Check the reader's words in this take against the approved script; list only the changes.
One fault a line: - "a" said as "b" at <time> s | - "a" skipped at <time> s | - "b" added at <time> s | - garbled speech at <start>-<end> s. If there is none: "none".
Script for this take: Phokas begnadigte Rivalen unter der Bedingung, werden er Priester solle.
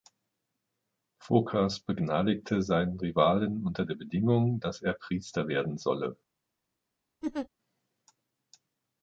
- "seinen" added at 2.6 s
- "werden" said as "dass" at 4.6 s
- "werden" added at 5.5 s